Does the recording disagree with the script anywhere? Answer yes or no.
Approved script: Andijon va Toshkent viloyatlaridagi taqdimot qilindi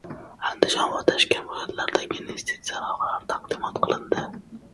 yes